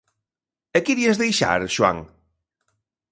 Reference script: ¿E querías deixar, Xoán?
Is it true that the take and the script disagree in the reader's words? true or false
false